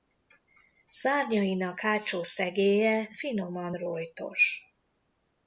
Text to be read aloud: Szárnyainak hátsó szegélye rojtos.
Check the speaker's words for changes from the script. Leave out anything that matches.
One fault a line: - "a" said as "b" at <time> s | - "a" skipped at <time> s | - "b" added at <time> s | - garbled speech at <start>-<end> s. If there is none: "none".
- "finoman" added at 3.1 s